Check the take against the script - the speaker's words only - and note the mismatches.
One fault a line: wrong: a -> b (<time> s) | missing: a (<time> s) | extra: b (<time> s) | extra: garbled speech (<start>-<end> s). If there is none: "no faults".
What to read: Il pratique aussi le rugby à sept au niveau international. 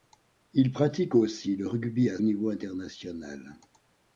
missing: sept au (2.2 s)